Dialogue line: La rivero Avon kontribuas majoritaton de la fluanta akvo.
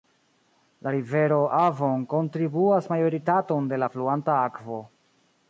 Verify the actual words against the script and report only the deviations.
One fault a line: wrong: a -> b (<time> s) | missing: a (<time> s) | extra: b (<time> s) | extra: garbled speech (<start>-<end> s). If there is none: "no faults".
no faults